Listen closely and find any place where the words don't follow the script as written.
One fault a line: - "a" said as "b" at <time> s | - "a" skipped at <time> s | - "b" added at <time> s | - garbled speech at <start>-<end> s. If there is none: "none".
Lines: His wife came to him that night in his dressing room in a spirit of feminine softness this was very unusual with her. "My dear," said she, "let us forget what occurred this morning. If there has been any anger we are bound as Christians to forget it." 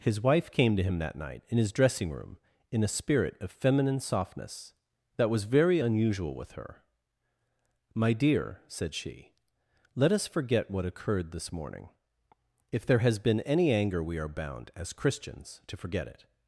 - "this" said as "that" at 5.2 s